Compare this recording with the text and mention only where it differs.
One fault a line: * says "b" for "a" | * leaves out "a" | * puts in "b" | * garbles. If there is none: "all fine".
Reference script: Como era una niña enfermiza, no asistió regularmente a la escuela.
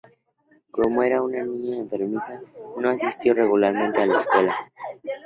all fine